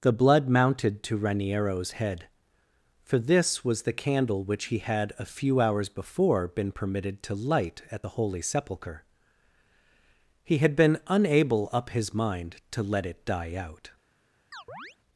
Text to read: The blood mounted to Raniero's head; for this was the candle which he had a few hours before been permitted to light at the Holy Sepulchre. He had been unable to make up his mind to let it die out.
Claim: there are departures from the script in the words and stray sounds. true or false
true